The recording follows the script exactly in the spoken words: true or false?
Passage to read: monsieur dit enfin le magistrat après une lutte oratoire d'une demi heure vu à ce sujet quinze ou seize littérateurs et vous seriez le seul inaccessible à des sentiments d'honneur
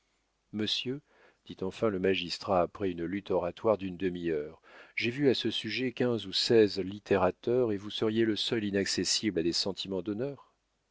false